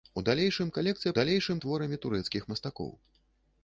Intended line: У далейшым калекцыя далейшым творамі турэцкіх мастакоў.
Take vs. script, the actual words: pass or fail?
pass